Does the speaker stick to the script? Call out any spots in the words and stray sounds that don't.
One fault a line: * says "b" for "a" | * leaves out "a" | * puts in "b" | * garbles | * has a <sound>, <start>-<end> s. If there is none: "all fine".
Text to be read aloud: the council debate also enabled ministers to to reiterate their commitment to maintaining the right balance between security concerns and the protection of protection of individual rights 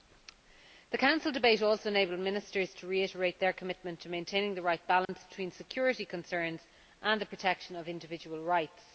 * leaves out "to"
* has a dropout, 5.0-5.1 s
* leaves out "protection of"